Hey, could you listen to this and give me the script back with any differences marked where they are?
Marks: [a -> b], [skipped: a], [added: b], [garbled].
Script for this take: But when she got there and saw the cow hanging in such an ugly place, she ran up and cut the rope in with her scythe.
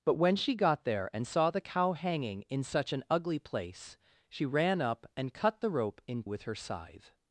But when she got there and saw the cow hanging in such an ugly place, she ran up and cut the rope in with her scythe.